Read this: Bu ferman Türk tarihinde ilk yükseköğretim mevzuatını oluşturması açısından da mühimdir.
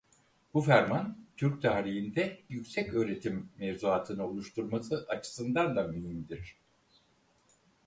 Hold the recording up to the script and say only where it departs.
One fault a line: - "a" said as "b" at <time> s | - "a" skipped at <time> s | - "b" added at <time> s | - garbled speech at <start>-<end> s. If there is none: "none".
- "ilk" skipped at 2.4 s